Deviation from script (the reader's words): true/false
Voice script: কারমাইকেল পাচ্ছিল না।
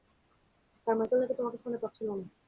true